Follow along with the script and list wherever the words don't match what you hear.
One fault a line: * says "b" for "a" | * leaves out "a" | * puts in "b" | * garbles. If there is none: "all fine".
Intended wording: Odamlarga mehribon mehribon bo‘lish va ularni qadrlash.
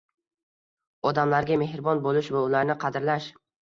* leaves out "mehribon"